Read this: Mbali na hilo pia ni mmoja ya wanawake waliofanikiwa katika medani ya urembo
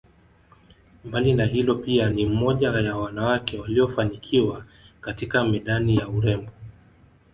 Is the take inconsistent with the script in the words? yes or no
no